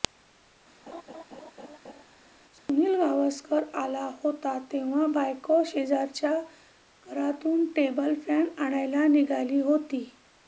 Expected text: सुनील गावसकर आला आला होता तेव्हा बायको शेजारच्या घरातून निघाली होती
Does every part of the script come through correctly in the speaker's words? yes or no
no